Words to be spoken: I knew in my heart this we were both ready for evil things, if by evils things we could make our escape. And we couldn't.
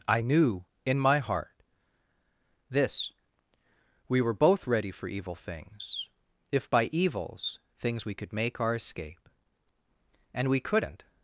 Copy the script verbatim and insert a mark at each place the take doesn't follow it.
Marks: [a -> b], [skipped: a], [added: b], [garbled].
I knew in my heart this we were both ready for evil things, if by evils things we could make our escape. And we couldn't.